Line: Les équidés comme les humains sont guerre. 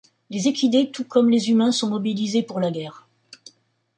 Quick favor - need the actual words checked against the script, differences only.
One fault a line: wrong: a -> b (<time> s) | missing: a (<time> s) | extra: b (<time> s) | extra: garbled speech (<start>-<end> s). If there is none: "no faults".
extra: tout (0.9 s)
extra: mobilisés pour la (1.9 s)